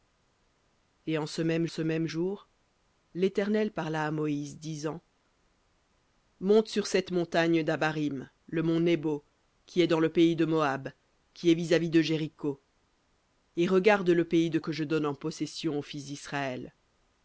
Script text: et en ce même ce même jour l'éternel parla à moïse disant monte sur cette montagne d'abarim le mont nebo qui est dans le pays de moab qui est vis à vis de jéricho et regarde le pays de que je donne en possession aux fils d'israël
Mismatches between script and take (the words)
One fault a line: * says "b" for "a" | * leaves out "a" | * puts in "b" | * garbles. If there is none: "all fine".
all fine